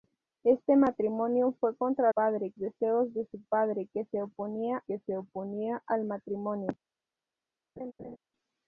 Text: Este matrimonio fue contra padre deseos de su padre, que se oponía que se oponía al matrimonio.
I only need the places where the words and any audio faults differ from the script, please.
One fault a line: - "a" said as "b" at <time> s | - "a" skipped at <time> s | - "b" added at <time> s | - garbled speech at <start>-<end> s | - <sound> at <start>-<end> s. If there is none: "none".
- laugh at 7.8-8.2 s